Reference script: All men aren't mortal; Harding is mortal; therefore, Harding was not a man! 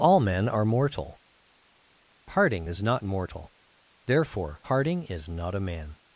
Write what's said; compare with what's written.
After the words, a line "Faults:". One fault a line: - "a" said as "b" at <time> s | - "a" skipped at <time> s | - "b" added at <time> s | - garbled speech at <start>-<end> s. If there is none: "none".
All men are mortal; Harding is not mortal; therefore, Harding is not a man!
Faults:
- "aren't" said as "are" at 0.5 s
- "not" added at 2.8 s
- "was" said as "is" at 5.0 s